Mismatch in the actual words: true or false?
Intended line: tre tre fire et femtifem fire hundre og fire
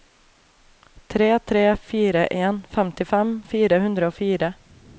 true